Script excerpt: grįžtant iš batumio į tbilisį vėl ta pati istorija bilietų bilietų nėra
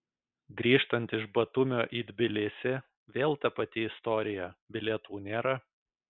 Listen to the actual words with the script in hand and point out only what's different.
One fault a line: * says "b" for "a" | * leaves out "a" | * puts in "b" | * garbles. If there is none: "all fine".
* leaves out "bilietų"